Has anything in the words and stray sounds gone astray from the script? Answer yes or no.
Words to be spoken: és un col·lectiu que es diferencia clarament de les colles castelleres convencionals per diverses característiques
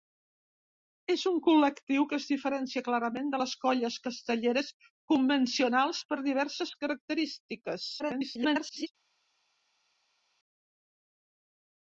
yes